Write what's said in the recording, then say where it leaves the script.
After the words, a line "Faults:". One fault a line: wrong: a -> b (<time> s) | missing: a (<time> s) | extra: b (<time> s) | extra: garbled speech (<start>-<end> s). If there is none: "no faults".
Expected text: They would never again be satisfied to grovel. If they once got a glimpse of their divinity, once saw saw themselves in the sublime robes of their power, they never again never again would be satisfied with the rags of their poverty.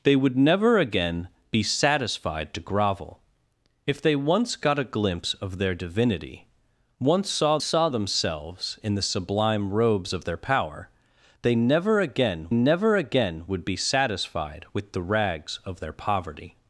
They would never again be satisfied to grovel. If they once got a glimpse of their divinity, once saw saw themselves in the sublime robes of their power, they never again never again would be satisfied with the rags of their poverty.
Faults:
no faults